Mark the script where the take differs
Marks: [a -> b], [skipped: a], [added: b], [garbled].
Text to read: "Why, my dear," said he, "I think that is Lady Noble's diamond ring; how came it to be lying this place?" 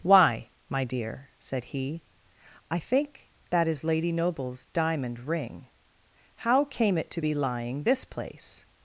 "Why, my dear," said he, "I think that is Lady Noble's diamond ring; how came it to be lying this place?"